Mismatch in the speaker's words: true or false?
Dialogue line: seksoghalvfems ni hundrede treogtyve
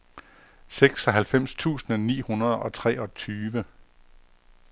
true